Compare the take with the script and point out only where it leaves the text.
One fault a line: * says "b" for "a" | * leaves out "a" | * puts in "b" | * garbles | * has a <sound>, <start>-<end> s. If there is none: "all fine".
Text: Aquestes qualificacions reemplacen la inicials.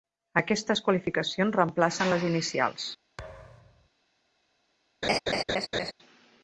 * says "les" for "la"
* has a thud, 3.2-3.9 s
* has a laugh, 5.0-5.9 s